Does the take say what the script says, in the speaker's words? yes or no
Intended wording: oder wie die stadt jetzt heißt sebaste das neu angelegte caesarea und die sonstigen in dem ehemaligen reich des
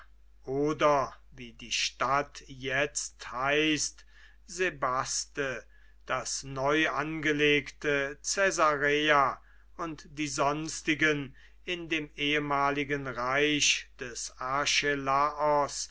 yes